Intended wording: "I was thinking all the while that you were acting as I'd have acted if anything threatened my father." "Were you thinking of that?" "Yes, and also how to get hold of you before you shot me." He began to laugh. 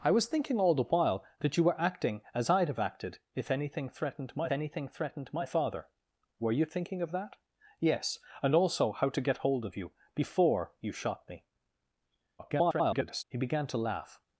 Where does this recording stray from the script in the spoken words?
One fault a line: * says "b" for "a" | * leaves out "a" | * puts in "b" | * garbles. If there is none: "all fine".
* puts in "anything threatened my"
* garbles